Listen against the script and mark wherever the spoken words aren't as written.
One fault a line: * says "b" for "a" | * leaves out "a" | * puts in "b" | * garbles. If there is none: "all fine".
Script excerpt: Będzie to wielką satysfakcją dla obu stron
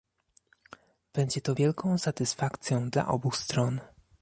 all fine